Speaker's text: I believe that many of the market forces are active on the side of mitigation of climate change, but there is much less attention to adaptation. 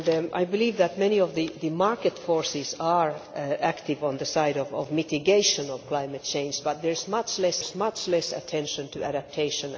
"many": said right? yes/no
yes